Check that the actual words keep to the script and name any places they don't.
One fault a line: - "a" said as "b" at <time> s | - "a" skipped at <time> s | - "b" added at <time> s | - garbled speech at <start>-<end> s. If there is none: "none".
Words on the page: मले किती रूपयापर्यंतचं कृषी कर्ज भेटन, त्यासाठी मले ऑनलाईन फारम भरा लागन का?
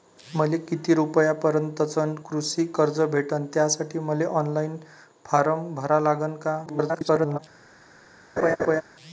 - garbled speech at 6.7-7.4 s